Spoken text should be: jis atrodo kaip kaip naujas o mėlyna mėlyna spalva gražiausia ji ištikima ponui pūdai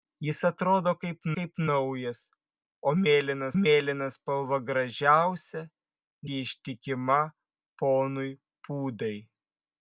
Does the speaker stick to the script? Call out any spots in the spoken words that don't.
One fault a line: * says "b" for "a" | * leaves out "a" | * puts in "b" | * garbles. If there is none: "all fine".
all fine